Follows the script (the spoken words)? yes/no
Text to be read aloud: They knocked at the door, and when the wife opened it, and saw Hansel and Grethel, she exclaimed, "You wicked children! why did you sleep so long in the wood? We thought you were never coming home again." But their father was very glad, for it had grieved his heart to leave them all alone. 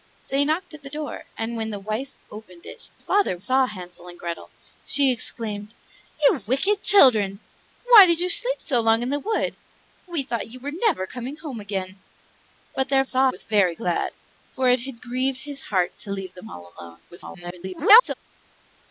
no